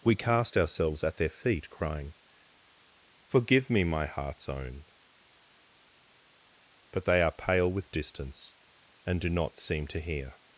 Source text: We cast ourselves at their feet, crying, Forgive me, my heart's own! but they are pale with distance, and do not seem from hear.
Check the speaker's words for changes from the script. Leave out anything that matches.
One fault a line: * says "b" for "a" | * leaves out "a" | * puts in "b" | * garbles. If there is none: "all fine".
* says "to" for "from"